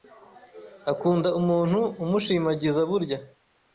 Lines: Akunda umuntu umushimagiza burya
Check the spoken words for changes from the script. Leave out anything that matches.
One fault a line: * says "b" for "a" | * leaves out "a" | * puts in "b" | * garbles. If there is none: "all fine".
all fine